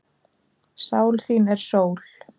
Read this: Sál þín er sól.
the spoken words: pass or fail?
pass